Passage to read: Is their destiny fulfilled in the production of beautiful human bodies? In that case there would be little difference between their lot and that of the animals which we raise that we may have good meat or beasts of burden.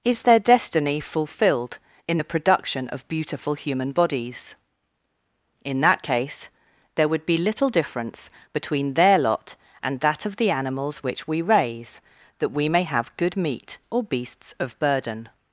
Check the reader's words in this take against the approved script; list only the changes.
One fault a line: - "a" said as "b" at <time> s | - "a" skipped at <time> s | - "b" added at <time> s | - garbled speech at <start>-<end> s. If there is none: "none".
none